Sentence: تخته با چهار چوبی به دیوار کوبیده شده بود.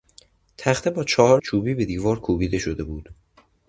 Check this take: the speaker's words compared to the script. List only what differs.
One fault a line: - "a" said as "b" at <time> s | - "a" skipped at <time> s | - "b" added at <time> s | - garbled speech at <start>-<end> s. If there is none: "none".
none